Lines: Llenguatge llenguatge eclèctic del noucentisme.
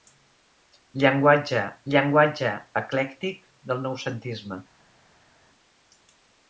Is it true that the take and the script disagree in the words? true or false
false